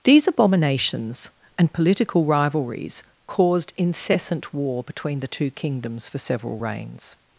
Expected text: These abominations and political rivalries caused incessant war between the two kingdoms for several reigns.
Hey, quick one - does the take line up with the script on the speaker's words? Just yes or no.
yes